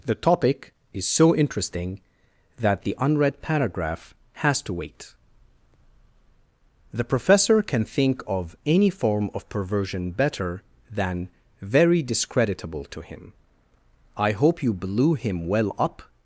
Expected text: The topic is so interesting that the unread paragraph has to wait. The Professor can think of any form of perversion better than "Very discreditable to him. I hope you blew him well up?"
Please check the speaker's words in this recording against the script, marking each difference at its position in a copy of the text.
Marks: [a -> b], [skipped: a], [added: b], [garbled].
The topic is so interesting that the unread paragraph has to wait. The Professor can think of any form of perversion better than "Very discreditable to him. I hope you blew him well up?"